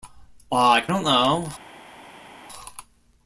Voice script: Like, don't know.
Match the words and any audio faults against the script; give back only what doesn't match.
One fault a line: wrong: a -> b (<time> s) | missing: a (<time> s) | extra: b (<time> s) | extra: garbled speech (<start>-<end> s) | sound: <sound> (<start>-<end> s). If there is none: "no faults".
no faults